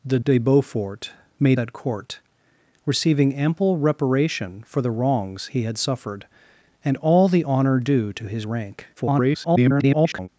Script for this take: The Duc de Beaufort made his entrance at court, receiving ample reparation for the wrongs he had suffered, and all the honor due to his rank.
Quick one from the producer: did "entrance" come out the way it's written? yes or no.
no